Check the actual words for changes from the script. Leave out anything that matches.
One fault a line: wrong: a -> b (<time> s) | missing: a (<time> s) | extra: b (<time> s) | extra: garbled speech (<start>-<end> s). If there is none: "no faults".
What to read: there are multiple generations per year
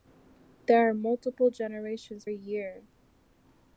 missing: per (2.2 s)